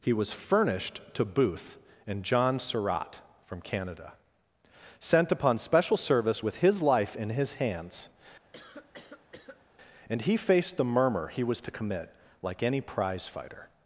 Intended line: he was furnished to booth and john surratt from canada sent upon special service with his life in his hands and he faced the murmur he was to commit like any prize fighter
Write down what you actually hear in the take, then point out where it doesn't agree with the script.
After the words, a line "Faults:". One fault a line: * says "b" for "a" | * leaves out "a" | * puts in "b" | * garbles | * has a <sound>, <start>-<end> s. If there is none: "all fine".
he was furnished to booth and john surratt from canada sent upon special service with his life in his hands and he faced the murmur he was to commit like any prize fighter
Faults:
* has a cough, 8.5-9.7 s